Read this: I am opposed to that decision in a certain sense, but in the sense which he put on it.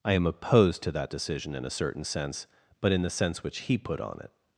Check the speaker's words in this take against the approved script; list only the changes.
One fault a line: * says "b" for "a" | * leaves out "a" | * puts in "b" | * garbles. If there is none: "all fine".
all fine